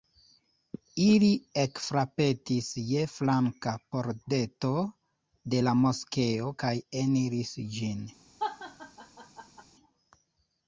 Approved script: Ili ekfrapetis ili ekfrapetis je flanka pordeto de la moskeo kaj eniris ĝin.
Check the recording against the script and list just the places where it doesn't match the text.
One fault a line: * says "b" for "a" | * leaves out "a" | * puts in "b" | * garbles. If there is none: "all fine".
* leaves out "ili ekfrapetis"